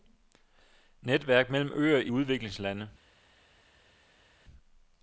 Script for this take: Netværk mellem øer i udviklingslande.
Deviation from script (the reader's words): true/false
false